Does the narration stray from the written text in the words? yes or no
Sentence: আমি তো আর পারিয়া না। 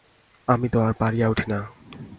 yes